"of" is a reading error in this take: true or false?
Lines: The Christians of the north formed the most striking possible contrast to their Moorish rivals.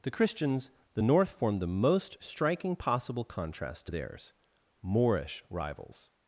true